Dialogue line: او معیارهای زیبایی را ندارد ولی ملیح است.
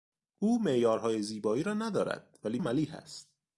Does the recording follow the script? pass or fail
pass